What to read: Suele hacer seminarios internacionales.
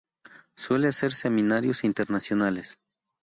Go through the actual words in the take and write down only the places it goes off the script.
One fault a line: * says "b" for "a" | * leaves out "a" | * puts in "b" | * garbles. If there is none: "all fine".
all fine